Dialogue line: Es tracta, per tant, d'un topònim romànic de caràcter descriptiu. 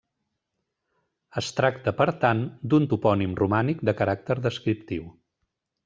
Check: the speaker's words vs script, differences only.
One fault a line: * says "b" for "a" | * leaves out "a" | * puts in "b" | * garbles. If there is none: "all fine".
all fine